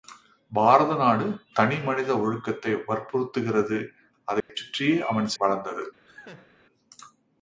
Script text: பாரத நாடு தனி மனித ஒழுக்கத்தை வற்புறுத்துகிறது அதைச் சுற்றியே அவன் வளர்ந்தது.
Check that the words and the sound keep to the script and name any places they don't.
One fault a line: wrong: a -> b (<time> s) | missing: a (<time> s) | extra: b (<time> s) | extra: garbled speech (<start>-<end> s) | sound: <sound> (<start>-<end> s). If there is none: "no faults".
sound: dropout (4.4-4.5 s)
sound: laugh (6.1-6.5 s)